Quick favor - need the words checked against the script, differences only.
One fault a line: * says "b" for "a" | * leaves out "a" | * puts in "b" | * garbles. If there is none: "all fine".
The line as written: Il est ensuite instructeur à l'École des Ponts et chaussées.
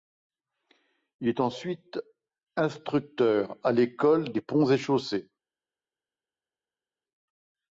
all fine